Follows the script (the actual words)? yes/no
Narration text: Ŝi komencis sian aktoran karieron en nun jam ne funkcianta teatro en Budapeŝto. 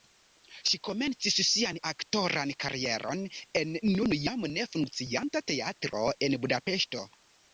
yes